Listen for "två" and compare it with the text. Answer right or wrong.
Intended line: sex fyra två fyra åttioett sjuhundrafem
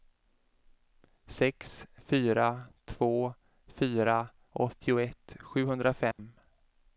right